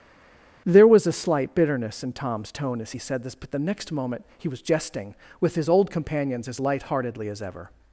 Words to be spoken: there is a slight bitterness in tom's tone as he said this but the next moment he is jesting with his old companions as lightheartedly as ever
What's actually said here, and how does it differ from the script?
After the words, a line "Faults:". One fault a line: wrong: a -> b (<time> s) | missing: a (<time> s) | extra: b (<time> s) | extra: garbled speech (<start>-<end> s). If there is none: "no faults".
there was a slight bitterness in tom's tone as he said this but the next moment he was jesting with his old companions as lightheartedly as ever
Faults:
wrong: is -> was (0.9 s)
wrong: is -> was (4.5 s)